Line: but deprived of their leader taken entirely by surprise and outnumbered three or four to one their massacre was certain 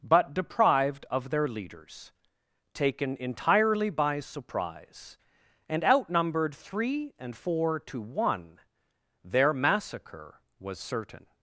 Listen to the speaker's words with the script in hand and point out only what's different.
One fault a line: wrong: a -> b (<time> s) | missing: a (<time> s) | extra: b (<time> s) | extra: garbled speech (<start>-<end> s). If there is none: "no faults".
wrong: leader -> leaders (1.5 s)
wrong: or -> and (7.2 s)